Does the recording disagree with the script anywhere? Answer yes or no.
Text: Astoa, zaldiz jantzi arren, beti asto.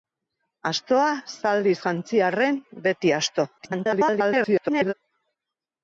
yes